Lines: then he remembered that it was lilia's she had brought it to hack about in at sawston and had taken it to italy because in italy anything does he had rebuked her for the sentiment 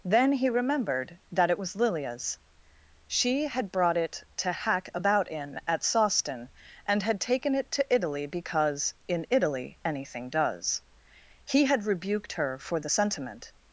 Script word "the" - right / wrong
right